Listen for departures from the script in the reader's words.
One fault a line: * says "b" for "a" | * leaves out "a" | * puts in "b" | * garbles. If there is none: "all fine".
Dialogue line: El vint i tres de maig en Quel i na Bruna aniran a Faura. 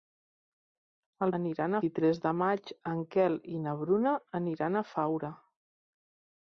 * says "aniran" for "vint"